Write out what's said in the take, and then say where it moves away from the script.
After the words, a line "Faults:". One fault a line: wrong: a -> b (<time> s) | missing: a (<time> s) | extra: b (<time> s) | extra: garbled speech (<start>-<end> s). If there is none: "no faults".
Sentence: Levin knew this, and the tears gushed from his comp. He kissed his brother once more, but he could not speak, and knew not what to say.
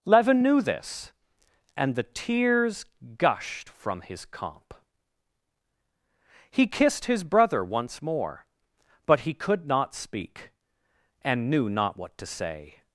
Levin knew this, and the tears gushed from his comp. He kissed his brother once more, but he could not speak, and knew not what to say.
Faults:
no faults